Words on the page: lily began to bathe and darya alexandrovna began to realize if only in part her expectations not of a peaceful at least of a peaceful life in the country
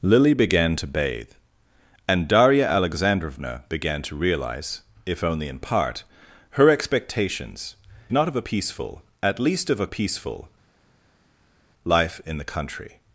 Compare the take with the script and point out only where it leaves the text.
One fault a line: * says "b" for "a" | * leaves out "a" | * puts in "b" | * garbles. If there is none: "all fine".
all fine